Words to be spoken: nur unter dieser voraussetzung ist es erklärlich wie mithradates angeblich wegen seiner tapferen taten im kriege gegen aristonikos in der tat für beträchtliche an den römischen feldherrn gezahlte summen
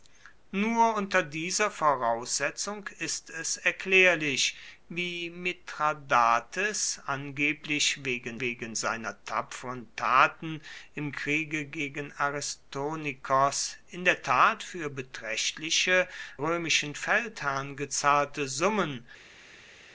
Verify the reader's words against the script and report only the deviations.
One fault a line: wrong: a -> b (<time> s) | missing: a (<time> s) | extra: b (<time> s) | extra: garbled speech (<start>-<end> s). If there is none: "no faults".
extra: wegen (8.4 s)
missing: an den (16.1 s)